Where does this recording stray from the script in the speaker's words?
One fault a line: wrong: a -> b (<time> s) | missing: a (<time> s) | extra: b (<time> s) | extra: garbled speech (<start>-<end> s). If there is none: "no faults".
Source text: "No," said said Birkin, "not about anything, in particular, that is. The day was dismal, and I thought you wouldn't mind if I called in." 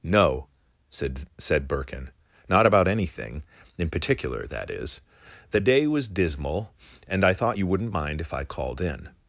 no faults